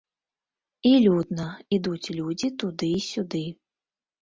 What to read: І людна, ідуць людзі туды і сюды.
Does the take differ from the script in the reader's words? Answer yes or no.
no